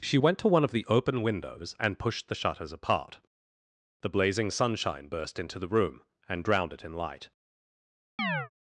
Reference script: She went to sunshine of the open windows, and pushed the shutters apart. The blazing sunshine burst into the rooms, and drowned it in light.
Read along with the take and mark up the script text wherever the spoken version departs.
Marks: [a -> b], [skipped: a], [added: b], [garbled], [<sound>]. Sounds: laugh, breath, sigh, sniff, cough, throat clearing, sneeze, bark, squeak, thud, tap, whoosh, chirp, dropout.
She went to [sunshine -> one] of the open windows, and pushed the shutters apart. The blazing sunshine burst into the [rooms, -> room] and drowned it in light. [chirp]